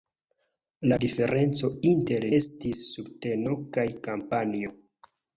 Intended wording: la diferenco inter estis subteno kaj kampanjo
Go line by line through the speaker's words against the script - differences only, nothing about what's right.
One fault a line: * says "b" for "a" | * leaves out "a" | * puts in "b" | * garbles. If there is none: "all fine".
all fine